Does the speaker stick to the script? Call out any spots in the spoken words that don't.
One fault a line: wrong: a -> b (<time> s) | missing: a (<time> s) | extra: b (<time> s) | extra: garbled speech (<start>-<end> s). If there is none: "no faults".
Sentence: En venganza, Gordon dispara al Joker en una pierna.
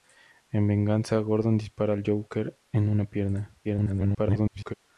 extra: garbled speech (3.6-4.7 s)